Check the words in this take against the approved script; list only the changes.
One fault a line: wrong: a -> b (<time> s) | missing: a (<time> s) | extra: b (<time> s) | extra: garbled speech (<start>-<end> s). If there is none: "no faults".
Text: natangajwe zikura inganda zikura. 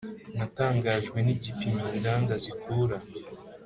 wrong: zikura -> nigipimo (1.2 s)